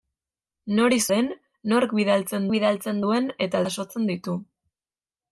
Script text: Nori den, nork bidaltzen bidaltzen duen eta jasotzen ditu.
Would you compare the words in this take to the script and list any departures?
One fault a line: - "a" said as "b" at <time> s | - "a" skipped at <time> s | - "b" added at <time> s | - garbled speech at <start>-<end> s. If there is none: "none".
none